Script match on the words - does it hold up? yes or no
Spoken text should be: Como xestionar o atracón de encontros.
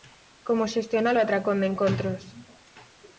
yes